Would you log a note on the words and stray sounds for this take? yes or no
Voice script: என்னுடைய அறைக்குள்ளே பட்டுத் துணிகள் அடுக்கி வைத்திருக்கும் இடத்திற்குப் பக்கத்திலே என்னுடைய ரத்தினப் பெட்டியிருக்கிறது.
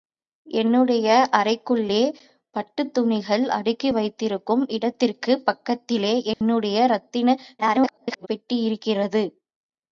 yes